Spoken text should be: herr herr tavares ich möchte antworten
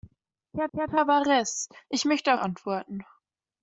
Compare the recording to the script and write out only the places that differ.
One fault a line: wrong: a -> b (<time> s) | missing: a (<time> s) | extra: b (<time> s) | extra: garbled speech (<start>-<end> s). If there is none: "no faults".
no faults